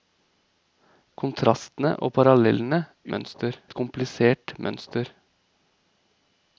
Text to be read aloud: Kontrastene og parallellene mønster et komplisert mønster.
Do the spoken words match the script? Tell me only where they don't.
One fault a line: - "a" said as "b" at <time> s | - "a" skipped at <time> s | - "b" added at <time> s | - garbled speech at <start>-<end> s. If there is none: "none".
none